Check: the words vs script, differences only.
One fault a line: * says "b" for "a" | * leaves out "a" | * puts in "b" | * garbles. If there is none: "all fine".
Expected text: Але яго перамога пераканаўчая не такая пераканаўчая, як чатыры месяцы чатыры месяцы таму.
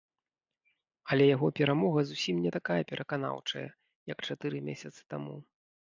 * says "зусім" for "пераканаўчая"
* leaves out "чатыры месяцы"